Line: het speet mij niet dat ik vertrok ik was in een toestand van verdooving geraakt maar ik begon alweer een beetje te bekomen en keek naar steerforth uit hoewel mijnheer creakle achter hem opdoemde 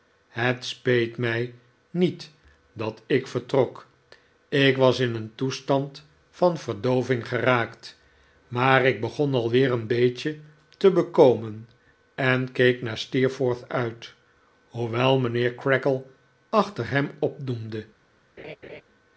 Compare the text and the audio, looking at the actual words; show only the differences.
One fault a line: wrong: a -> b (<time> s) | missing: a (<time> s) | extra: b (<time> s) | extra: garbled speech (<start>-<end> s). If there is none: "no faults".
no faults